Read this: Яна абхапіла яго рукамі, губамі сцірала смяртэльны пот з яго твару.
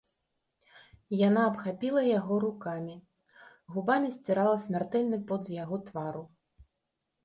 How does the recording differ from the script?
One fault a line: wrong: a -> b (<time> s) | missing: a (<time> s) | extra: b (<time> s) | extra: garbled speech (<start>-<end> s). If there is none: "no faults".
no faults